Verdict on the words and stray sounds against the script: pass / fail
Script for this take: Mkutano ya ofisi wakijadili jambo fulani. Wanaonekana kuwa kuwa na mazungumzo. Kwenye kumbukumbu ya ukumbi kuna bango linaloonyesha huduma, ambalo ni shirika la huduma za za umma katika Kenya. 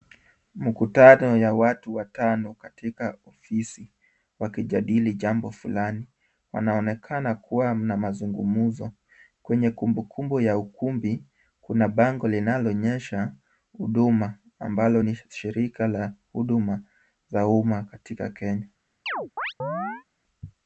fail